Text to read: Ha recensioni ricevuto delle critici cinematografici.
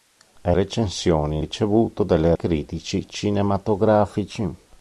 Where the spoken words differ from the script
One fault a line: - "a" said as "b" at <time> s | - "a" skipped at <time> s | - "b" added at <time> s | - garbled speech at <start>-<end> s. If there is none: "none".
none